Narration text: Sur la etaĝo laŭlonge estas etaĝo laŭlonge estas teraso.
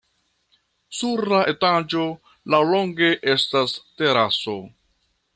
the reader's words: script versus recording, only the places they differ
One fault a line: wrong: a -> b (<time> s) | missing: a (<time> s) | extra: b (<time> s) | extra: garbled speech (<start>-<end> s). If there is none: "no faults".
missing: etaĝo laŭlonge estas (3.7 s)